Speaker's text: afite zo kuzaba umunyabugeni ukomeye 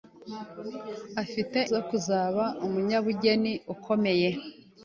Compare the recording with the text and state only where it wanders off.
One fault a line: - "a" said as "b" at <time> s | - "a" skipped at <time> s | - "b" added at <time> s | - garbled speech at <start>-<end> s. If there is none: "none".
none